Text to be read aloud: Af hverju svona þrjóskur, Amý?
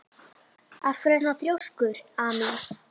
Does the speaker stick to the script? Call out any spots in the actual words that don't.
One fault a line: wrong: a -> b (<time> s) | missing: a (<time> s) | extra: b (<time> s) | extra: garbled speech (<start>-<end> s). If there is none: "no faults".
no faults